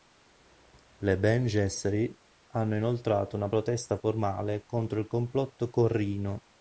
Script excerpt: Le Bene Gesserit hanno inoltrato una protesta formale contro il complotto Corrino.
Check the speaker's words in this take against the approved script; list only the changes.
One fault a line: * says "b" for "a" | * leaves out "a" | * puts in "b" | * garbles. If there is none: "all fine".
all fine